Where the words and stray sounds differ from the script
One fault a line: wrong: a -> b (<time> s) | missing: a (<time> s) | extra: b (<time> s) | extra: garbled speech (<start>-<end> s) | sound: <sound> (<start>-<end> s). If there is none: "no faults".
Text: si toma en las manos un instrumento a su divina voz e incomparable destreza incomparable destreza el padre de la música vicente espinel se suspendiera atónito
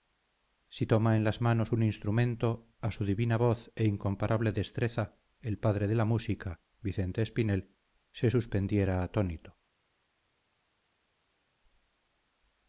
missing: incomparable destreza (5.2 s)